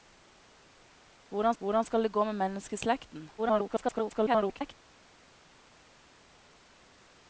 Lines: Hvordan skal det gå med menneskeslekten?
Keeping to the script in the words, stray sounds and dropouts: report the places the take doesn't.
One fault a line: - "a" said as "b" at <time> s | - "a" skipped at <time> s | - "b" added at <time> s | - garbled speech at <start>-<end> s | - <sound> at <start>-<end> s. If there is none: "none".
- "hvordan" added at 1.6 s
- garbled speech at 3.4-4.7 s